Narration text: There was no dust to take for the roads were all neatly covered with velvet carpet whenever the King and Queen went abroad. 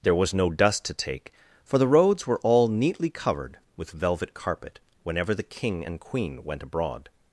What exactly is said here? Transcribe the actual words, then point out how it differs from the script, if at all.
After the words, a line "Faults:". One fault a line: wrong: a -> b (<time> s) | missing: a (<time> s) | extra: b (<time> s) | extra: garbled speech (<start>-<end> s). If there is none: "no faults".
There was no dust to take for the roads were all neatly covered with velvet carpet whenever the King and Queen went abroad.
Faults:
no faults